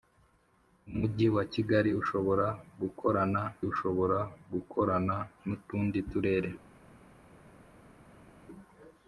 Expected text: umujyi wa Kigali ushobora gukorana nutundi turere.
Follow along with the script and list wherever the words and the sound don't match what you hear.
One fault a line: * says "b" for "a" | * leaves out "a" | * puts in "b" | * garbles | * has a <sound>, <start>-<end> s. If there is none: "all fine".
* puts in "ushobora gukorana"